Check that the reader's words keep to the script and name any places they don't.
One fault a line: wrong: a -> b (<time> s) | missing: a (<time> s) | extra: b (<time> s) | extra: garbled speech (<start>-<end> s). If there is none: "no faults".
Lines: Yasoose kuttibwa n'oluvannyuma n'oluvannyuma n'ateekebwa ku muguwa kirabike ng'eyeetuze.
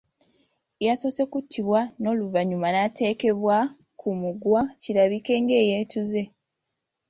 missing: n'oluvannyuma (2.7 s)